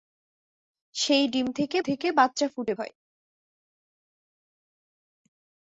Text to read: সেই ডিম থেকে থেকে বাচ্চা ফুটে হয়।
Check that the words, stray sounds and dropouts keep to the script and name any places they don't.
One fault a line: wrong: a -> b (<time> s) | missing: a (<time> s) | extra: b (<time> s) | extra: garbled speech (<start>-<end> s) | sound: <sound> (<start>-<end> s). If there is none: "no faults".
no faults